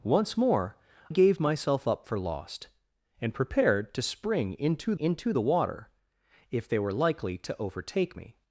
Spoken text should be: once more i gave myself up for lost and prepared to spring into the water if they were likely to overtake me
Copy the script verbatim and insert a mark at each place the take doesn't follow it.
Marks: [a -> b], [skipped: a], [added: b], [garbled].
once more [skipped: i] gave myself up for lost and prepared to spring into [added: into] the water if they were likely to overtake me